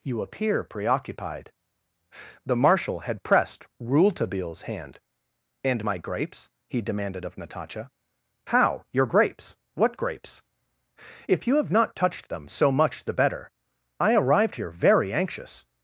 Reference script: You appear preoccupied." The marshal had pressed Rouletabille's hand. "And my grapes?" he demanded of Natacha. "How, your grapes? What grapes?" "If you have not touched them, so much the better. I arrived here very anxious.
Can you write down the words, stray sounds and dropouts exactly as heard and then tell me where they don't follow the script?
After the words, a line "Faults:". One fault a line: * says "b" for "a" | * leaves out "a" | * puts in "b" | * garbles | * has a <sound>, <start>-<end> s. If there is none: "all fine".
You appear preoccupied." The marshal had pressed Rouletabille's hand. "And my grapes?" he demanded of Natacha. "How, your grapes? What grapes?" "If you have not touched them, so much the better. I arrived here very anxious.
Faults:
all fine